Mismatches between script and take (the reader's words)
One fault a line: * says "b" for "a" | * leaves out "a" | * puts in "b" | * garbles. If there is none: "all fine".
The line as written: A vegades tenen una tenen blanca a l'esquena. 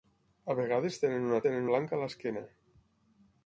all fine